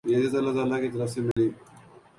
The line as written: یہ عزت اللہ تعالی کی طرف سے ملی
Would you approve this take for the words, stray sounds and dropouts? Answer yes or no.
no